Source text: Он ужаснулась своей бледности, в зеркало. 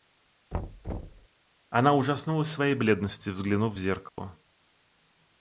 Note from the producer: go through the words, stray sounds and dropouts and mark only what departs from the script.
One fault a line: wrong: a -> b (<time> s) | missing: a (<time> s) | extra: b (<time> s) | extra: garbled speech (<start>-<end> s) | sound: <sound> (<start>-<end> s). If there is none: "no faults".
sound: thud (0.5-1.3 s)
wrong: Он -> Она (1.7 s)
extra: взглянув (3.3 s)
sound: dropout (4.1-4.2 s)